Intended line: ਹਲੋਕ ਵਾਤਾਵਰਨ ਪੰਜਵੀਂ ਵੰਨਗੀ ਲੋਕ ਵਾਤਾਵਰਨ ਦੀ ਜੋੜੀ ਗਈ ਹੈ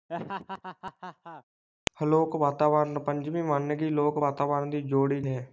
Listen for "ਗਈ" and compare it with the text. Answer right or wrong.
wrong